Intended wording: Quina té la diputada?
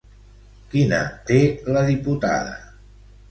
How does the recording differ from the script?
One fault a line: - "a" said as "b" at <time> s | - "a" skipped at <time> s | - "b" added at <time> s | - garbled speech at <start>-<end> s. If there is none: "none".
none